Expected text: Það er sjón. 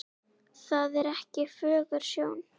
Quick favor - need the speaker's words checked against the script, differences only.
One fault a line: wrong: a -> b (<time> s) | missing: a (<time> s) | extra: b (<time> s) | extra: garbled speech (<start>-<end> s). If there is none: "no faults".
extra: ekki fögur (1.1 s)